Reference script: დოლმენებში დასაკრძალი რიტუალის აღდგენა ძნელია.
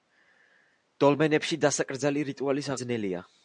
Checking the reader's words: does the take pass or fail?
fail